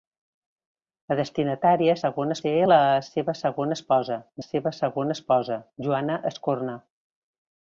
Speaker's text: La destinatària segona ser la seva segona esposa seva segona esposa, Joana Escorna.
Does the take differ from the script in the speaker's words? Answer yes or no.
no